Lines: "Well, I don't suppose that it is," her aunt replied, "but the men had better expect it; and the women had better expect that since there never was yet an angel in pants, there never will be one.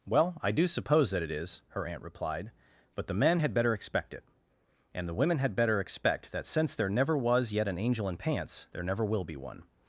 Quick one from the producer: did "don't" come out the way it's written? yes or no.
no